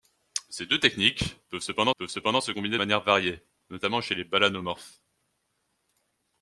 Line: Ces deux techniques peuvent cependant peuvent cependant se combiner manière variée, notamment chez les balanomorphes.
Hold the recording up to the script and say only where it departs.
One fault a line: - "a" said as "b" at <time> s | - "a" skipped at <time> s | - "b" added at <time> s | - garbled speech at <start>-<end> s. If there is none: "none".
none